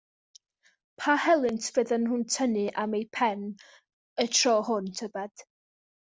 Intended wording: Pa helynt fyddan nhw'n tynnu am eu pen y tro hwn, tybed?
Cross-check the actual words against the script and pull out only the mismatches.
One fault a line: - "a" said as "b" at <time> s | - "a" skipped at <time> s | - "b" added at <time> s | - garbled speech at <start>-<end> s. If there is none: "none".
none